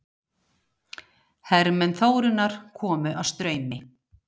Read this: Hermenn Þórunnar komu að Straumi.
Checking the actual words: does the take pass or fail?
pass